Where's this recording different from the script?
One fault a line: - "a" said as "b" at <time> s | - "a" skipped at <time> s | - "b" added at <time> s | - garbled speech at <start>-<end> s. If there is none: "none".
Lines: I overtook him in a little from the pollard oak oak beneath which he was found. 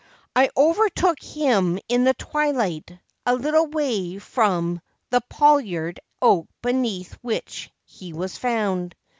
- "the twilight" added at 2.0 s
- "way" added at 3.7 s
- "oak" skipped at 6.5 s